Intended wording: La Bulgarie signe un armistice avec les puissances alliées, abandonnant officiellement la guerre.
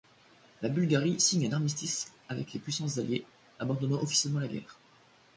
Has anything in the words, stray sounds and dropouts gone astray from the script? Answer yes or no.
no